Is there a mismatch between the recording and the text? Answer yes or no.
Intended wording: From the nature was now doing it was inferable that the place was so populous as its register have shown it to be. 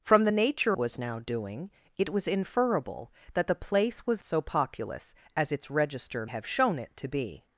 no